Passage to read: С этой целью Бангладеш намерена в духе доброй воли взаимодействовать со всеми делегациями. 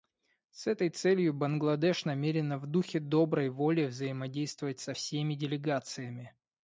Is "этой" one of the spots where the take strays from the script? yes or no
no